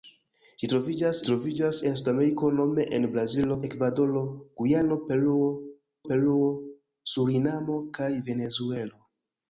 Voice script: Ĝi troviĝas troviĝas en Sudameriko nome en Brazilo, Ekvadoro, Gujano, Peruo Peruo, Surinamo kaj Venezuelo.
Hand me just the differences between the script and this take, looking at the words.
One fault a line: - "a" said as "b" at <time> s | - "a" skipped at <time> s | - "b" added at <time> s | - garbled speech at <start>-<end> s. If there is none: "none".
none